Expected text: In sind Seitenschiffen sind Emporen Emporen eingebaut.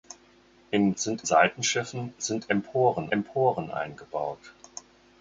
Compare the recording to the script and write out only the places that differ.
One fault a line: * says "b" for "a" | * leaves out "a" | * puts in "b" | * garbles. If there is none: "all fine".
all fine